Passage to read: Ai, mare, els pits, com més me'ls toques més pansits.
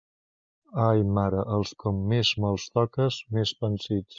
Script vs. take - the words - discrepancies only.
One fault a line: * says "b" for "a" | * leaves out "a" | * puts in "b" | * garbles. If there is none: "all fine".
* leaves out "pits"